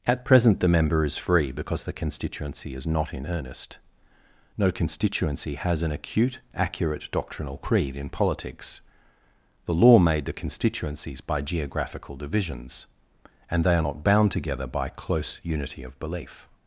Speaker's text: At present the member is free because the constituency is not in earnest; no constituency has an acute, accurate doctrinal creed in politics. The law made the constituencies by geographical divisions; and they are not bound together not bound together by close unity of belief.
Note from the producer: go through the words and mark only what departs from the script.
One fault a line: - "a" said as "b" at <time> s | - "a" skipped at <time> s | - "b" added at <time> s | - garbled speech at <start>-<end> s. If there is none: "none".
- "not bound together" skipped at 14.7 s